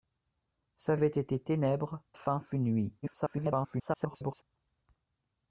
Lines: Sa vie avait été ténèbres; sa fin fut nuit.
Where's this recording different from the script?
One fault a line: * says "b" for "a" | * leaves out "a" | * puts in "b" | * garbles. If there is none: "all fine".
* leaves out "vie"
* leaves out "sa"
* garbles